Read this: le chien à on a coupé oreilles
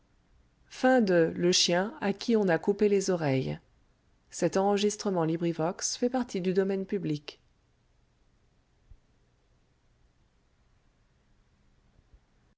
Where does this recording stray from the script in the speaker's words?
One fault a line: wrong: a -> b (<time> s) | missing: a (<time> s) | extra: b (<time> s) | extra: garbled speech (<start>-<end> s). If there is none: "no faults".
extra: qui (2.1 s)
extra: les (2.9 s)